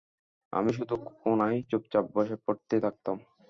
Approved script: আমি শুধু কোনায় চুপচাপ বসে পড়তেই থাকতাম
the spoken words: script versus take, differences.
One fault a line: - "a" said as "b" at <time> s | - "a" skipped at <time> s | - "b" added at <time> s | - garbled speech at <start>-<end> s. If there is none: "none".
none